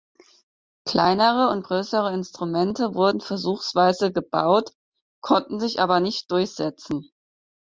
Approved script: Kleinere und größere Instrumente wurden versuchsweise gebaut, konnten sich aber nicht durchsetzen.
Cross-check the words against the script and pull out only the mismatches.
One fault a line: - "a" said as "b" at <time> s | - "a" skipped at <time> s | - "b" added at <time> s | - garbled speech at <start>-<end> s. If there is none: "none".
none